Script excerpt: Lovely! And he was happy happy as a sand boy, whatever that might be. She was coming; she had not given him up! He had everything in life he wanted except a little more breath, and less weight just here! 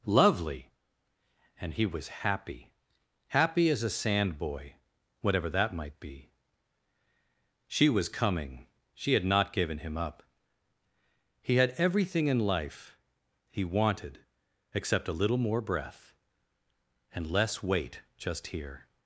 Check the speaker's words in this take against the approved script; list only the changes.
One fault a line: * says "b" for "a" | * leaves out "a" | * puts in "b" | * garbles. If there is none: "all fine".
all fine